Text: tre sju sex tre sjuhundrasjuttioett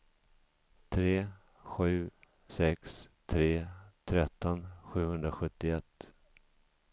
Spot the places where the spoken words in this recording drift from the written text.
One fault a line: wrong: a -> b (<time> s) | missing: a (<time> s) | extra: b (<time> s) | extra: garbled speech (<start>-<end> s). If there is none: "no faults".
extra: tretton (4.0 s)